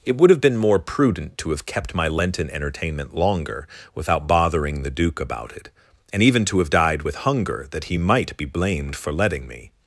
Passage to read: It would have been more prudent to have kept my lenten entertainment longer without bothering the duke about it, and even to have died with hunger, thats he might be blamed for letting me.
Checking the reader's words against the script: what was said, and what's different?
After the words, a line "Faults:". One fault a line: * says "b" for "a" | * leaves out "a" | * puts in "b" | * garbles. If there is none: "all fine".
It would have been more prudent to have kept my lenten entertainment longer without bothering the duke about it, and even to have died with hunger, that he might be blamed for letting me.
Faults:
* says "that" for "thats"